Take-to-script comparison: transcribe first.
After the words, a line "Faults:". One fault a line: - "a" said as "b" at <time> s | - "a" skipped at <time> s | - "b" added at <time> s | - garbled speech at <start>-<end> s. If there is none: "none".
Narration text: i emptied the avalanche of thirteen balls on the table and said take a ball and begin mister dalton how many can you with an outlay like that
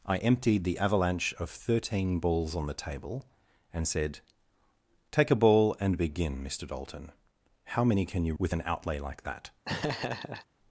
i emptied the avalanche of thirteen balls on the table and said take a ball and begin mister dalton how many can you with an outlay like that
Faults:
none